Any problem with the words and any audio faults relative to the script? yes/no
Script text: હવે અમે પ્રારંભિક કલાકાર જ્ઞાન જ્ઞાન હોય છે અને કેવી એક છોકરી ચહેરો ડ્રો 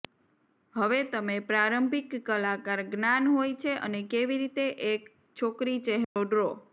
yes